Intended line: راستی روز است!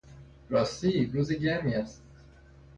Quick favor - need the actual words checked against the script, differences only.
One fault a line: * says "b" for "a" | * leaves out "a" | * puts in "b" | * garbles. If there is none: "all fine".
* puts in "گرمی"